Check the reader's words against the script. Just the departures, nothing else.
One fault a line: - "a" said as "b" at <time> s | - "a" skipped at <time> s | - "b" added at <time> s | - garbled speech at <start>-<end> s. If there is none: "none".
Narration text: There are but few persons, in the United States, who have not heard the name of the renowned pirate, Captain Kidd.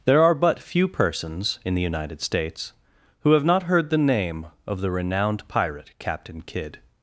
none